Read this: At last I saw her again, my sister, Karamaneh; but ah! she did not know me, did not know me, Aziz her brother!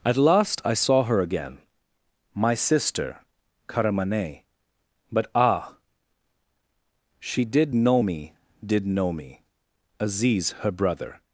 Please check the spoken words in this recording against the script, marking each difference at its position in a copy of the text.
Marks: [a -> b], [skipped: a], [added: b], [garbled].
At last I saw her again, my sister, Karamaneh; but ah! she did [skipped: not] know me, did [skipped: not] know me, Aziz her brother!